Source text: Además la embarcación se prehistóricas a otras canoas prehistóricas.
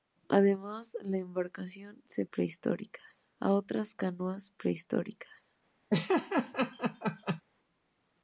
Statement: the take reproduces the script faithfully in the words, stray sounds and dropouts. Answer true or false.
false